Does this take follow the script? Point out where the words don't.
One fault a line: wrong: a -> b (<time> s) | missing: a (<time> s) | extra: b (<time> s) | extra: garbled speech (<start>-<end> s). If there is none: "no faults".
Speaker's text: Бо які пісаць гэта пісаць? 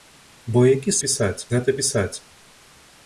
no faults